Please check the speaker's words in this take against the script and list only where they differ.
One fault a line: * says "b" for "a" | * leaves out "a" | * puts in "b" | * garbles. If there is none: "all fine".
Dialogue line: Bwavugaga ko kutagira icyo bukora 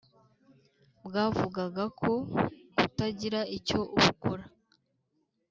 all fine